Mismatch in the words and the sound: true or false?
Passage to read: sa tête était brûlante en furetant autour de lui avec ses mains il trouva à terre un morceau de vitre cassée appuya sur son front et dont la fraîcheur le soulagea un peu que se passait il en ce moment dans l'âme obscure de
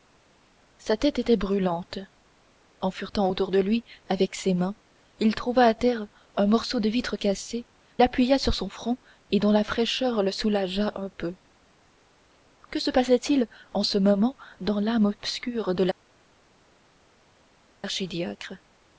false